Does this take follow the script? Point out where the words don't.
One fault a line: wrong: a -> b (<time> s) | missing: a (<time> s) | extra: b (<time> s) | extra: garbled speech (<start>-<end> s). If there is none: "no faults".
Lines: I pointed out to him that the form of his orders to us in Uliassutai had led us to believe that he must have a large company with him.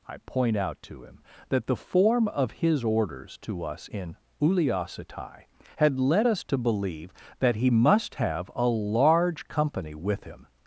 wrong: pointed -> point (0.2 s)